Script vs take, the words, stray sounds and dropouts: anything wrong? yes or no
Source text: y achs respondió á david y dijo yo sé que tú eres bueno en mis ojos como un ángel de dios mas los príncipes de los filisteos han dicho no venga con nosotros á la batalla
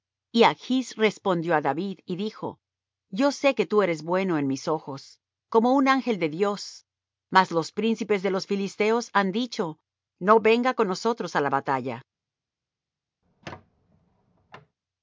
yes